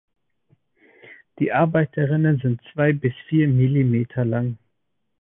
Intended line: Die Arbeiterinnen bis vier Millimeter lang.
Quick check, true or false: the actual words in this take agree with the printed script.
false